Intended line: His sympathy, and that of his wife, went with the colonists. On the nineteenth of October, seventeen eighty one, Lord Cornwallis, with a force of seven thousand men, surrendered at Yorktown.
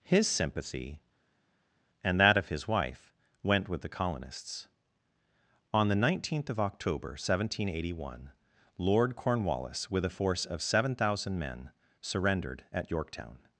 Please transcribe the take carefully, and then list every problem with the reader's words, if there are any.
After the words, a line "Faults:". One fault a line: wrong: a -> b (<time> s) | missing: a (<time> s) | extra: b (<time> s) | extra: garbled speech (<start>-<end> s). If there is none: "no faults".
His sympathy, and that of his wife, went with the colonists. On the nineteenth of October, seventeen eighty one, Lord Cornwallis, with a force of seven thousand men, surrendered at Yorktown.
Faults:
no faults